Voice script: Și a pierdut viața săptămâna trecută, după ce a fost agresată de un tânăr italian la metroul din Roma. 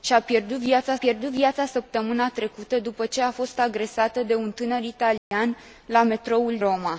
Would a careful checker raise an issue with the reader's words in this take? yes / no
yes